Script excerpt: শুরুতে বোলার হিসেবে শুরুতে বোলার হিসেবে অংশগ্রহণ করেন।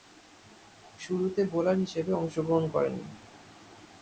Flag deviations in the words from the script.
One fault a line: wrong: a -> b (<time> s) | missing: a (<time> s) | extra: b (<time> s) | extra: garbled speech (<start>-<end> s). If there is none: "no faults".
missing: শুরুতে বোলার হিসেবে (2.1 s)